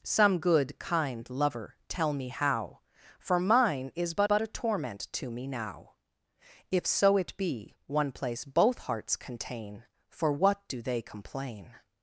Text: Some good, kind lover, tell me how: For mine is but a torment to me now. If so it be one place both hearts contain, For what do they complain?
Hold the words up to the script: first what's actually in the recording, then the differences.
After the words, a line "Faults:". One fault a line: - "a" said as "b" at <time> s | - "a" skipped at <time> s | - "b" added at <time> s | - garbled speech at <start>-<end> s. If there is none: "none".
Some good, kind lover, tell me how: For mine is but but a torment to me now. If so it be one place both hearts contain, For what do they complain?
Faults:
- "but" added at 4.2 s